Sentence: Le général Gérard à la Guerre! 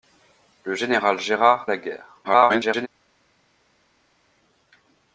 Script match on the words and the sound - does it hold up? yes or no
no